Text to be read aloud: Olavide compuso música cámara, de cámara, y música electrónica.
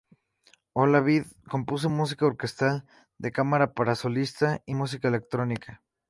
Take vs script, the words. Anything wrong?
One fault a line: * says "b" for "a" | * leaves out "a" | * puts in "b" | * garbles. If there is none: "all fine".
* says "orquestal" for "cámara"
* puts in "para solista"